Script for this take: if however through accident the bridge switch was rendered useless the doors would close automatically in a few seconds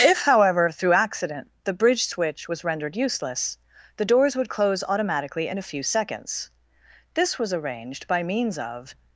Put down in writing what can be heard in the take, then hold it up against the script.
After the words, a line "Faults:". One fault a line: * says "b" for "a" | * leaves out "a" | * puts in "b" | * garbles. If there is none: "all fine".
if however through accident the bridge switch was rendered useless the doors would close automatically in a few seconds this was arranged by means of
Faults:
* puts in "this was arranged by means of"